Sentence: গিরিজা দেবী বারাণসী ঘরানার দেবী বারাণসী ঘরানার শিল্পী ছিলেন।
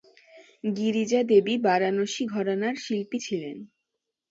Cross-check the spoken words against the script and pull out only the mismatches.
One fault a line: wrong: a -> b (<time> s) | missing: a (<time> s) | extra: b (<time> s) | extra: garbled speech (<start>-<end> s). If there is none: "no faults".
missing: দেবী বারাণসী ঘরানার (2.8 s)